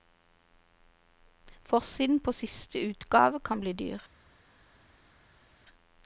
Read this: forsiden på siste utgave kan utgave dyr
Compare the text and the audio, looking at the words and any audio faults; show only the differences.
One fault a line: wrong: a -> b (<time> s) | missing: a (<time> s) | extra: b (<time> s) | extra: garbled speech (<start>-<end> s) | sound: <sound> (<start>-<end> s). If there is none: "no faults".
wrong: utgave -> bli (3.6 s)